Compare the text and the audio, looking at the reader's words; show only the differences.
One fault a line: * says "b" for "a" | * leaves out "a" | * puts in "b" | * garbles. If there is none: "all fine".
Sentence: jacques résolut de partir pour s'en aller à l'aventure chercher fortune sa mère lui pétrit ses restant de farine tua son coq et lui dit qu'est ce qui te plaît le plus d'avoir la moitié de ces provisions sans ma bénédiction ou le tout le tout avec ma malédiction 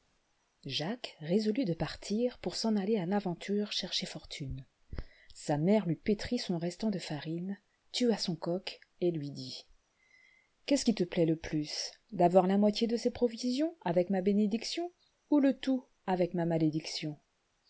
* says "son" for "ses"
* says "avec" for "sans"
* leaves out "le tout"